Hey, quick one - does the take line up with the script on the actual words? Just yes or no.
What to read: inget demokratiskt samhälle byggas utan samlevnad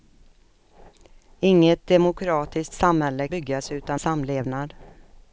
yes